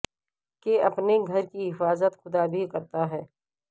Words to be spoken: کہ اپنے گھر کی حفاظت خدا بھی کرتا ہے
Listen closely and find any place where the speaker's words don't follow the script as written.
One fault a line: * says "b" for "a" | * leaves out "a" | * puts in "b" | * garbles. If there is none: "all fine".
all fine